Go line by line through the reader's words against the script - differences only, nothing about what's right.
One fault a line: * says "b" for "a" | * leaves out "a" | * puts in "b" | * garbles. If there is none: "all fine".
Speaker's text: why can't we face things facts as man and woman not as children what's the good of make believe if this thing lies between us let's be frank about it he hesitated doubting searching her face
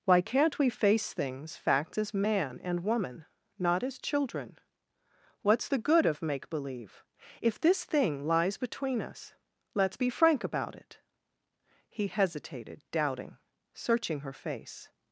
all fine